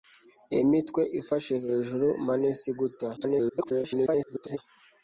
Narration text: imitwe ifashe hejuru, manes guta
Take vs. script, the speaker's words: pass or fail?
fail